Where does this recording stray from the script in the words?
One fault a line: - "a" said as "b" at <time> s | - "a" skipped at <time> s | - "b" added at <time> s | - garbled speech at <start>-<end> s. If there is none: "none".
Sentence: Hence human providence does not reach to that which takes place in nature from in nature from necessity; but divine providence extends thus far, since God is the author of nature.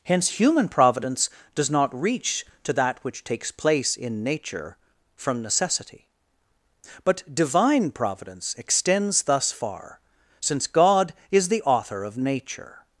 - "in nature from" skipped at 5.4 s